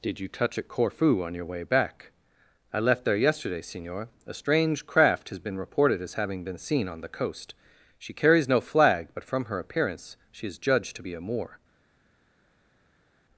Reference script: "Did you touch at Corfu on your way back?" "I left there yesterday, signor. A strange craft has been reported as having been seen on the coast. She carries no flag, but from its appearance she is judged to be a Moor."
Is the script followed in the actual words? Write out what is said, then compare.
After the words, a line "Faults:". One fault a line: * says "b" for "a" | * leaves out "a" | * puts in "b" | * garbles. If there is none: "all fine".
"Did you touch at Corfu on your way back?" "I left there yesterday, signor. A strange craft has been reported as having been seen on the coast. She carries no flag, but from her appearance she is judged to be a Moor."
Faults:
* says "her" for "its"